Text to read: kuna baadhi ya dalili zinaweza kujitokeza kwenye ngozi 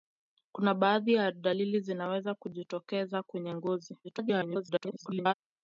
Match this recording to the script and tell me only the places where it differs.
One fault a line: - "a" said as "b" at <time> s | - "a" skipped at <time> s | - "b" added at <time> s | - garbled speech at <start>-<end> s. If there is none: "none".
- garbled speech at 4.0-5.3 s